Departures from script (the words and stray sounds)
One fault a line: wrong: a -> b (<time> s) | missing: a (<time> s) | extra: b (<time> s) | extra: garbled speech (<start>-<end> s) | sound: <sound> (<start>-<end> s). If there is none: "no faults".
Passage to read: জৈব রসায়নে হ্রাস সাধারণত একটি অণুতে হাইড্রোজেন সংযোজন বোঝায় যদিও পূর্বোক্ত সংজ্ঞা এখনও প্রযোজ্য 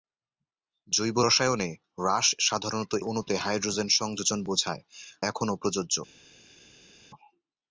missing: একটি (2.9 s)
missing: যদিও পূর্বোক্ত সংজ্ঞা (4.8 s)